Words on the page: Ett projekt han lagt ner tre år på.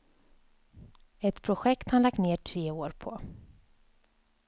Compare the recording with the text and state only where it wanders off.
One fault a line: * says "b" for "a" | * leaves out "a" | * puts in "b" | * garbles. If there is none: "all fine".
all fine